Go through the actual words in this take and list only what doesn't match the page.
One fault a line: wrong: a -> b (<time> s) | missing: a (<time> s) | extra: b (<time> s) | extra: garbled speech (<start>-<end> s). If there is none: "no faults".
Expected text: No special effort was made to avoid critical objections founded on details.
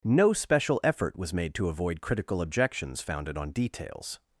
no faults